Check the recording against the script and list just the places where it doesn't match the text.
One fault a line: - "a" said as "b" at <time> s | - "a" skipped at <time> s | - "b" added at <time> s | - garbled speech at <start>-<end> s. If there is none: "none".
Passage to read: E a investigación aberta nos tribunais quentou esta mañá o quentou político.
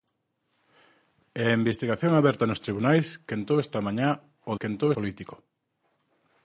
none